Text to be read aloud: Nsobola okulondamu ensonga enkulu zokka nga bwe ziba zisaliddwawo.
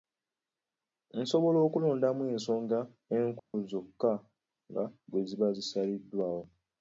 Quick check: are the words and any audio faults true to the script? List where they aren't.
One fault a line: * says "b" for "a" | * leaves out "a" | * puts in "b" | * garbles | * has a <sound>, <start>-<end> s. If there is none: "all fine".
* has a dropout, 3.4-3.5 s